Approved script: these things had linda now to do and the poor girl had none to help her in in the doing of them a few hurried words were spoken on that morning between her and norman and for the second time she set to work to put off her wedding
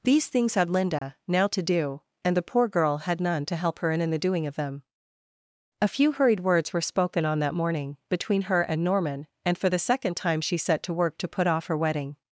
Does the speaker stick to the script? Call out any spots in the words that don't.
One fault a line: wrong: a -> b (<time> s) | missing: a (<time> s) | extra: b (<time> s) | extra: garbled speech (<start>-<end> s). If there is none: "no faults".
no faults